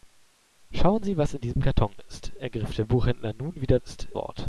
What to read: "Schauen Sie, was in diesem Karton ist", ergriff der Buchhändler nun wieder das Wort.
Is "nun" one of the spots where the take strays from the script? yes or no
no